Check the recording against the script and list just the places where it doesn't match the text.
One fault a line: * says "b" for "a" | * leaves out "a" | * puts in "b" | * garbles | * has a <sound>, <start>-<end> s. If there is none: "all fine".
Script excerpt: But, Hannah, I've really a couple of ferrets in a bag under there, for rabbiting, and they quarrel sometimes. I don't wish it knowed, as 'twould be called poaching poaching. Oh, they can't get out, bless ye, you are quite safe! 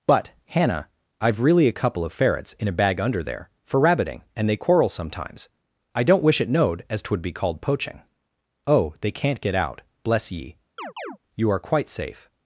* leaves out "poaching"
* has a chirp, 10.8-11.2 s